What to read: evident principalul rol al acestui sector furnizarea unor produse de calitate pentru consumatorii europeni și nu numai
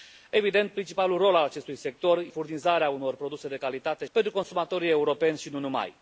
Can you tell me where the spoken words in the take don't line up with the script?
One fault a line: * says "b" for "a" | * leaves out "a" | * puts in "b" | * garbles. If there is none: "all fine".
all fine